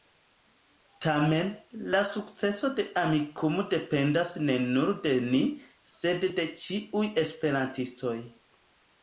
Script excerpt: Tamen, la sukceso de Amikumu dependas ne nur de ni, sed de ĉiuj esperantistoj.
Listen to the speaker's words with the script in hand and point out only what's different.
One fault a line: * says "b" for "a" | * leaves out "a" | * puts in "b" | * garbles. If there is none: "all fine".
all fine